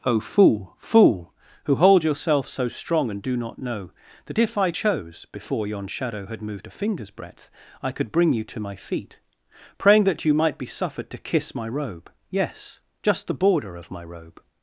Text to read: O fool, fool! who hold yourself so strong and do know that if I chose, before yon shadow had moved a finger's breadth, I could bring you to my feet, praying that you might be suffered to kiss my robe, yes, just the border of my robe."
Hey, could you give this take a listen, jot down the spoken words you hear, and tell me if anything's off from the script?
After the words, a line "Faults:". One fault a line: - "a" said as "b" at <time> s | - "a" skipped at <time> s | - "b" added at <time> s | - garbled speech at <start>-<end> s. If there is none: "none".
O fool, fool! who hold yourself so strong and do not know that if I chose, before yon shadow had moved a finger's breadth, I could bring you to my feet, praying that you might be suffered to kiss my robe, yes, just the border of my robe."
Faults:
- "not" added at 3.4 s